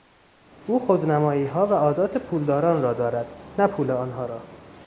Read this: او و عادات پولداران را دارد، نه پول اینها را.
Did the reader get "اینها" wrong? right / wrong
wrong